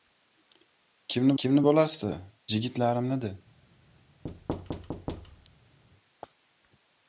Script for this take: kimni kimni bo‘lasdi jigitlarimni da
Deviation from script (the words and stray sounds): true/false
true